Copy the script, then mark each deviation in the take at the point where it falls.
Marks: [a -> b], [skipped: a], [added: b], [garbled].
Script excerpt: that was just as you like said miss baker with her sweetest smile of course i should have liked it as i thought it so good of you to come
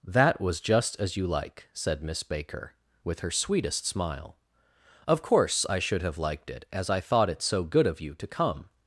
that was just as you like said miss baker with her sweetest smile of course i should have liked it as i thought it so good of you to come